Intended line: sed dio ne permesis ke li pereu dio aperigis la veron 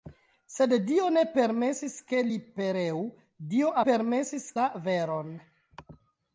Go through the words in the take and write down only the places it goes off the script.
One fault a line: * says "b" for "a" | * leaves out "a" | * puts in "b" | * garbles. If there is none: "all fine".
* says "permesis" for "aperigis"